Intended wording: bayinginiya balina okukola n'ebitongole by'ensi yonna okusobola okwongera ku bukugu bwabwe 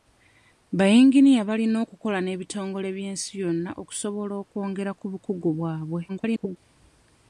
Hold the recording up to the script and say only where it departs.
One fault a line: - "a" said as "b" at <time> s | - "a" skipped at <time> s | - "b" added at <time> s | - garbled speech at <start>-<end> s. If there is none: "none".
- garbled speech at 6.1-6.6 s